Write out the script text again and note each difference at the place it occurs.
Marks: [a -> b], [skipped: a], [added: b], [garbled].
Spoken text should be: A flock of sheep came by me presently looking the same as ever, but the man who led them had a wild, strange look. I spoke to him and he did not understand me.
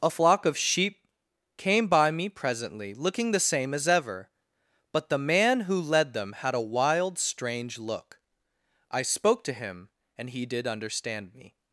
A flock of sheep came by me presently looking the same as ever, but the man who led them had a wild, strange look. I spoke to him and he did [skipped: not] understand me.